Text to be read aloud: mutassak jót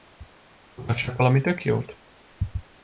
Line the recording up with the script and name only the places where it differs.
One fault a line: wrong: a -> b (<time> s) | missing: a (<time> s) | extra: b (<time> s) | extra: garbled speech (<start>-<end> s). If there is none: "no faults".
extra: valami tök (1.2 s)